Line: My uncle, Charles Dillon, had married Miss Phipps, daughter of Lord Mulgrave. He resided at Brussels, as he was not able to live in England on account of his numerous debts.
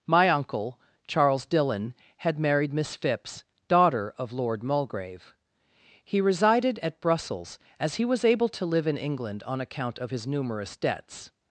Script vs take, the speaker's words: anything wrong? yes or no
yes